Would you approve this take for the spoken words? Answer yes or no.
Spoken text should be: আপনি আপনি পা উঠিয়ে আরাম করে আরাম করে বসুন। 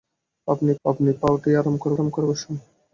yes